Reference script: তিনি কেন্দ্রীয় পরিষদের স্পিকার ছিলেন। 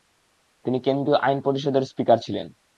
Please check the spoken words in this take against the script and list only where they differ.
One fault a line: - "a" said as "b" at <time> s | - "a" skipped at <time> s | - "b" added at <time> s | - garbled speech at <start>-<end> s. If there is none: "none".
- "আইন" added at 1.2 s